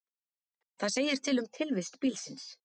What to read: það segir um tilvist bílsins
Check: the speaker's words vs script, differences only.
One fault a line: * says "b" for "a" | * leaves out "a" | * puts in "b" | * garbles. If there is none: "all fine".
* puts in "til"